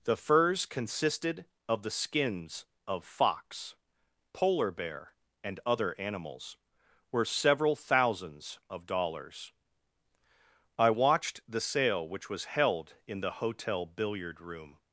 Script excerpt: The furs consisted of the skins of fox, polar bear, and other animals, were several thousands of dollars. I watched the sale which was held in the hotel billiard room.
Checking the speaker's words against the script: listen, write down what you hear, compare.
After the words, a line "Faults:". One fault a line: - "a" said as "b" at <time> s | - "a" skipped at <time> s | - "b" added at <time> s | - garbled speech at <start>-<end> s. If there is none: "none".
The furs consisted of the skins of fox, polar bear, and other animals, were several thousands of dollars. I watched the sale which was held in the hotel billiard room.
Faults:
none